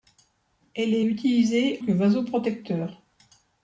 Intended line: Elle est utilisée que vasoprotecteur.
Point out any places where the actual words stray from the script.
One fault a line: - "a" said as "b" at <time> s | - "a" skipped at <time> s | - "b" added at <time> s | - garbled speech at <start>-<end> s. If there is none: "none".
none